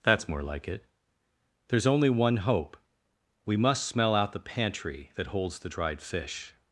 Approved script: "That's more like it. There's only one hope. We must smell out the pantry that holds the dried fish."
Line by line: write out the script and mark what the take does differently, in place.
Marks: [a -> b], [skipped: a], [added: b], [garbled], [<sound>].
"That's more like it. There's only one hope. We must smell out the pantry that holds the dried fish."